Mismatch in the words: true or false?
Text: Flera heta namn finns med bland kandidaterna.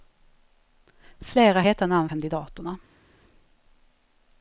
true